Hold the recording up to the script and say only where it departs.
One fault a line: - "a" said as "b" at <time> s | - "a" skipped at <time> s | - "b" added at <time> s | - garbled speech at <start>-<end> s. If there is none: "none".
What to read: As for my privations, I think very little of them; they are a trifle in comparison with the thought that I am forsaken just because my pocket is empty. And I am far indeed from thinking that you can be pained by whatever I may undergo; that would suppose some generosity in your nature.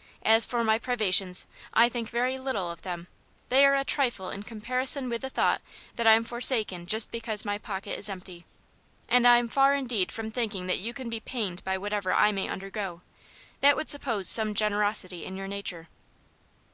none